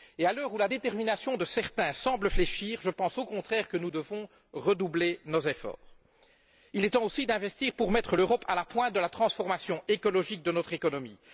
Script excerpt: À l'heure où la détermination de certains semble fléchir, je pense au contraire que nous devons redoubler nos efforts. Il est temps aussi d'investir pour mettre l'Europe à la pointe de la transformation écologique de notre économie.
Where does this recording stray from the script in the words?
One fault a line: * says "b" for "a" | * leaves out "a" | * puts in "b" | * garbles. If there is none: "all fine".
all fine